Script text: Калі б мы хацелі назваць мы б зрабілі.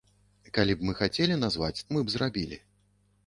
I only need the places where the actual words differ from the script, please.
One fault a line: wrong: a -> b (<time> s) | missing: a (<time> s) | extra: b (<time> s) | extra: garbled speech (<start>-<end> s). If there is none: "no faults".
no faults